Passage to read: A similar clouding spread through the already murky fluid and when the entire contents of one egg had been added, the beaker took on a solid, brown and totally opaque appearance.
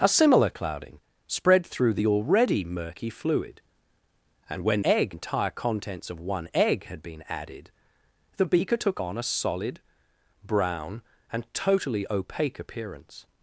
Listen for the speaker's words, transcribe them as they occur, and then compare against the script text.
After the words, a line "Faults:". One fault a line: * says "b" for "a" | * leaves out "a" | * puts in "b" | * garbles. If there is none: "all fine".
A similar clouding spread through the already murky fluid and when egg entire contents of one egg had been added, the beaker took on a solid, brown and totally opaque appearance.
Faults:
* says "egg" for "the"